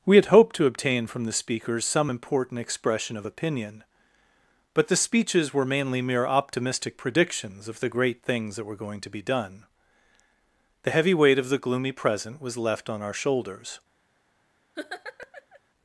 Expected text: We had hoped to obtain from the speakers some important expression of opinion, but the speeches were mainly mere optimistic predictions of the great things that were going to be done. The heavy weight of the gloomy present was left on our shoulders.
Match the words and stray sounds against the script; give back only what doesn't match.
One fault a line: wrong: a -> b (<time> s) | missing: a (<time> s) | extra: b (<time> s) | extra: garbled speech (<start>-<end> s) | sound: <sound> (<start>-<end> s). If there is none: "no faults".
sound: laugh (14.8-15.6 s)